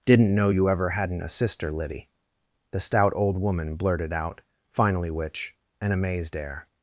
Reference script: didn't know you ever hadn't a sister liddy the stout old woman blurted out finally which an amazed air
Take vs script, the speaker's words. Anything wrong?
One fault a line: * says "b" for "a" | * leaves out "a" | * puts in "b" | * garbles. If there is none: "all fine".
all fine